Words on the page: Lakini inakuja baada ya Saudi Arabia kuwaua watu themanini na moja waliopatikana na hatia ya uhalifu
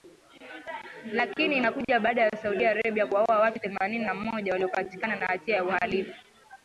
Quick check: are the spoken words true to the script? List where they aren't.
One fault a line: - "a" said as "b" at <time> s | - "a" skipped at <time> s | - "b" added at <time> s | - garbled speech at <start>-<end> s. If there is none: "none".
none